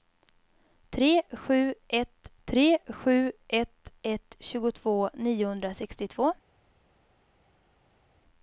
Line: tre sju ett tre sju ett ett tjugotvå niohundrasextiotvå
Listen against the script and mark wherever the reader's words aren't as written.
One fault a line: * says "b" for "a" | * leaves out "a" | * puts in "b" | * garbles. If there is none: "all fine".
all fine